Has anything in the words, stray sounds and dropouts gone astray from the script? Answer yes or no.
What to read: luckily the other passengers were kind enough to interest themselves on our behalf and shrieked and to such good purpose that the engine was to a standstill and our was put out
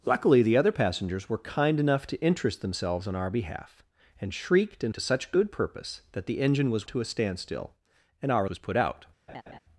yes